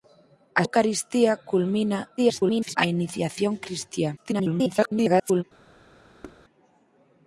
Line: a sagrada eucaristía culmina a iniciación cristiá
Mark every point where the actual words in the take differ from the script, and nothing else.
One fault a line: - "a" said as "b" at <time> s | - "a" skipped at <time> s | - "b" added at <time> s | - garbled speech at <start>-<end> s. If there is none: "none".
- "sagrada" skipped at 0.6 s
- garbled speech at 2.2-2.8 s
- garbled speech at 4.2-5.4 s